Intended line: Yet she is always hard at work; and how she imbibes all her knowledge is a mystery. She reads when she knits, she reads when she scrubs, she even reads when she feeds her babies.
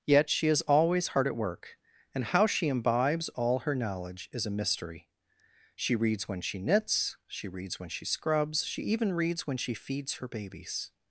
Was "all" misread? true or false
false